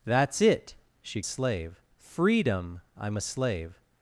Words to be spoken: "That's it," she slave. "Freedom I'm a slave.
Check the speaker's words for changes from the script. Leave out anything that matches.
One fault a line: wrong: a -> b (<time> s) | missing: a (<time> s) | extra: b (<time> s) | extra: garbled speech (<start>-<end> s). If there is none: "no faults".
no faults